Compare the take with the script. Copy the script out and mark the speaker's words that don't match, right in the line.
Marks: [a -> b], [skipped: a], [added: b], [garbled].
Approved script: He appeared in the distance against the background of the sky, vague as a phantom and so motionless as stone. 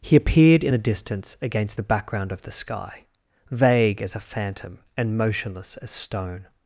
He appeared in the distance against the background of the sky, vague as a phantom and [skipped: so] motionless as stone.